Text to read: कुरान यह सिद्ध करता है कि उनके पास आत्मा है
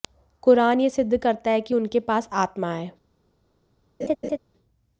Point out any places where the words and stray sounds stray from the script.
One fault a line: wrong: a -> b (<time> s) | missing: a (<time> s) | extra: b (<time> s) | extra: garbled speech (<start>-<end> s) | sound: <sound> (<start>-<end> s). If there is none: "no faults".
sound: laugh (4.0-4.4 s)